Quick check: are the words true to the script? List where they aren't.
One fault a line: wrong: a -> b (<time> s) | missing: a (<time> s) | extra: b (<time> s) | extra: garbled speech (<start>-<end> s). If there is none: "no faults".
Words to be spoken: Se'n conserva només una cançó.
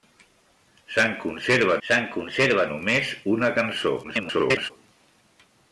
extra: se'n conserva (1.9 s)
extra: garbled speech (4.0-4.7 s)